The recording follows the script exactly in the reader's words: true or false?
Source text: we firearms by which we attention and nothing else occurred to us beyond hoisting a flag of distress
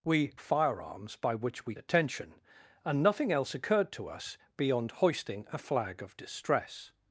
true